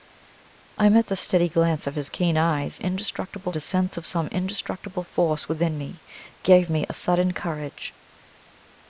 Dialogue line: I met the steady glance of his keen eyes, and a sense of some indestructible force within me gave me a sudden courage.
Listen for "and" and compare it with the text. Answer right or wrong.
wrong